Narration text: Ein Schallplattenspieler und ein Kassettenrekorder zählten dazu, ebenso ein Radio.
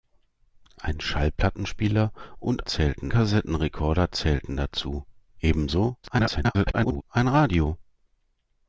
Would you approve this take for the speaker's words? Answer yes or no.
no